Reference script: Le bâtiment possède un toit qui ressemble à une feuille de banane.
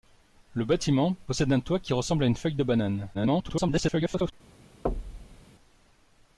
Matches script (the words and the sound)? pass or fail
fail